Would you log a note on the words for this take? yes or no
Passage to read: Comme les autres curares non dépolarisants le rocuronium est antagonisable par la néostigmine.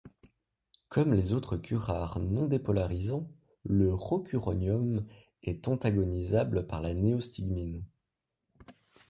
no